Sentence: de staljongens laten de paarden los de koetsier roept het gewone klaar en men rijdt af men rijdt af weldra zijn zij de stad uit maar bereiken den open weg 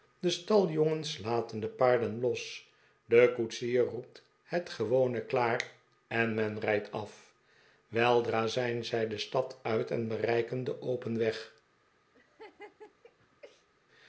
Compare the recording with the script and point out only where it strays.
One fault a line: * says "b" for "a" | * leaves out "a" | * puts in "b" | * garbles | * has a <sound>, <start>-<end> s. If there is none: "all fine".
* leaves out "men rijdt af"
* says "en" for "maar"
* has a laugh, 12.1-13.7 s